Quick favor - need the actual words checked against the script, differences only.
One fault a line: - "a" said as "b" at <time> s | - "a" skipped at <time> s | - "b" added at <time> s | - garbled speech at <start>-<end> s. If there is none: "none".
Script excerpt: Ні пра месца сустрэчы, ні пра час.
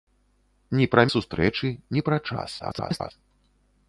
- "месца" skipped at 1.0 s
- garbled speech at 2.6-3.1 s